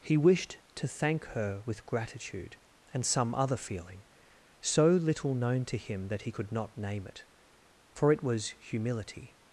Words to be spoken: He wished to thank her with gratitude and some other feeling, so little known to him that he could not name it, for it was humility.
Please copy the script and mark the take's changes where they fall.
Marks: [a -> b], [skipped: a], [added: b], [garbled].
He wished to thank her with gratitude and some other feeling, so little known to him that he could not name it, for it was humility.